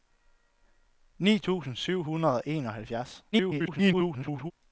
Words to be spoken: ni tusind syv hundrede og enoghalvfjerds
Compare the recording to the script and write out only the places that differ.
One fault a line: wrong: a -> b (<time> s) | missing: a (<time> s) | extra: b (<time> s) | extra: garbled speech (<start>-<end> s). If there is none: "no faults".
extra: garbled speech (3.3-4.5 s)